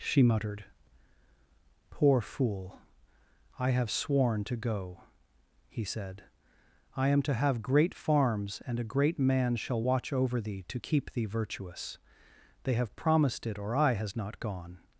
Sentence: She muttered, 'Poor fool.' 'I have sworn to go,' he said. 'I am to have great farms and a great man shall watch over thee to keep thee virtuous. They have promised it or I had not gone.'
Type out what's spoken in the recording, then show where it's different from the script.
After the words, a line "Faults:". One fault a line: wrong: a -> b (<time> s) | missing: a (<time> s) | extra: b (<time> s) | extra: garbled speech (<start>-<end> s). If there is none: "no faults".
She muttered, 'Poor fool.' 'I have sworn to go,' he said. 'I am to have great farms and a great man shall watch over thee to keep thee virtuous. They have promised it or I has not gone.'
Faults:
wrong: had -> has (13.9 s)